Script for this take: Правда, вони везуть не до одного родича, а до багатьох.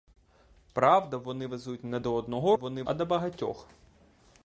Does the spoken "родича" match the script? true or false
false